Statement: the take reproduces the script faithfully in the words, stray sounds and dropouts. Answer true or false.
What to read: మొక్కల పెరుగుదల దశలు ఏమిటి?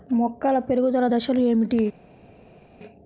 true